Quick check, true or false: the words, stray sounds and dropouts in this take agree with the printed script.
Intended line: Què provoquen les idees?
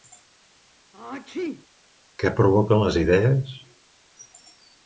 false